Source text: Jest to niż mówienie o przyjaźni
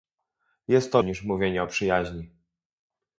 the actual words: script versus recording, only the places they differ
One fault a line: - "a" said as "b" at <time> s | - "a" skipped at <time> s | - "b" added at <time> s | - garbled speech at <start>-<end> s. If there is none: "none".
none